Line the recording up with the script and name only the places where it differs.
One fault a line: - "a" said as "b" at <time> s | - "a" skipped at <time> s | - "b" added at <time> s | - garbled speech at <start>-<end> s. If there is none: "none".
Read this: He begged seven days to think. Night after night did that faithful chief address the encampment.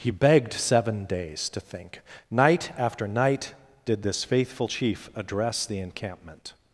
- "that" said as "this" at 4.0 s